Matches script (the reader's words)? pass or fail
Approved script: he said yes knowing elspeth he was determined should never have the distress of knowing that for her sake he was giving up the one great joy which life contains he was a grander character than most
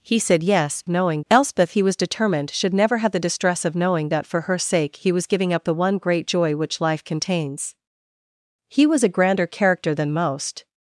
pass